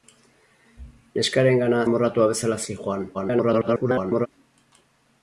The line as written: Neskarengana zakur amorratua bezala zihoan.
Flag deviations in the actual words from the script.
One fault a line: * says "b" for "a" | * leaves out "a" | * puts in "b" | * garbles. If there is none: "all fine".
* leaves out "zakur"
* garbles